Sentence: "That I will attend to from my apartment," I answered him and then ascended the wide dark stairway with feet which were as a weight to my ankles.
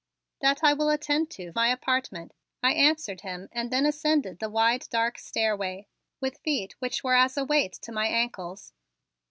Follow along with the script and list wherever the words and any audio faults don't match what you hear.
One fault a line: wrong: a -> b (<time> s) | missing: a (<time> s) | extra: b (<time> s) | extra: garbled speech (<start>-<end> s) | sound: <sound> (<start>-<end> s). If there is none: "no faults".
missing: from (1.5 s)